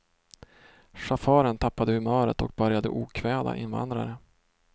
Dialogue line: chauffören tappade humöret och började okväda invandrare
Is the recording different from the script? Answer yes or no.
no